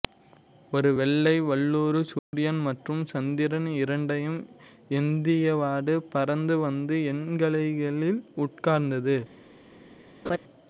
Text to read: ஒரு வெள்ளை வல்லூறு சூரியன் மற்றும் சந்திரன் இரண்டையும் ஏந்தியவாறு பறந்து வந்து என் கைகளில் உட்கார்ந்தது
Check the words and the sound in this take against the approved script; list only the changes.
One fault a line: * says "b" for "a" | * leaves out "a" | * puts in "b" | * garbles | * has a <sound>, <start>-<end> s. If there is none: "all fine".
* has a dropout, 2.2-2.3 s
* has a laugh, 10.2-10.4 s